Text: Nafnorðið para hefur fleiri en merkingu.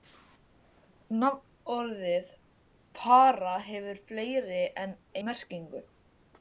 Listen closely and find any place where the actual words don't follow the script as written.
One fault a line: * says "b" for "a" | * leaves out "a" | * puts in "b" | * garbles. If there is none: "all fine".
all fine